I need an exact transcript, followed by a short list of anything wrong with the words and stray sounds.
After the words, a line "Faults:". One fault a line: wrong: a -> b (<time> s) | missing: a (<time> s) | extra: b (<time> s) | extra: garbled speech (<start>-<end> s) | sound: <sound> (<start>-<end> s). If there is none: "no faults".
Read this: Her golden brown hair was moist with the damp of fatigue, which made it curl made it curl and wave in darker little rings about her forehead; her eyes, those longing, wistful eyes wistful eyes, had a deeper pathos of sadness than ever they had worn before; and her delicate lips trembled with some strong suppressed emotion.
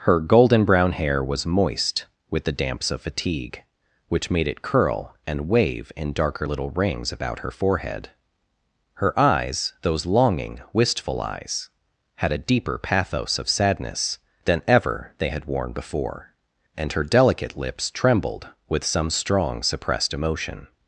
Her golden brown hair was moist with the damps of fatigue, which made it curl and wave in darker little rings about her forehead; her eyes, those longing, wistful eyes, had a deeper pathos of sadness than ever they had worn before; and her delicate lips trembled with some strong suppressed emotion.
Faults:
wrong: damp -> damps (2.6 s)
missing: made it curl (5.1 s)
missing: wistful eyes (11.7 s)